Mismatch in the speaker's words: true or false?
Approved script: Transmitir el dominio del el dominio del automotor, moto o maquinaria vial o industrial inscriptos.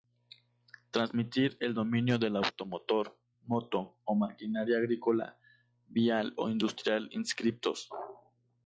true